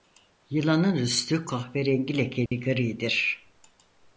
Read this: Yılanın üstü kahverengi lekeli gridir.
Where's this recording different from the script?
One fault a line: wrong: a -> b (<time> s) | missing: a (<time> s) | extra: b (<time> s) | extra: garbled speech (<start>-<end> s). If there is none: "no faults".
no faults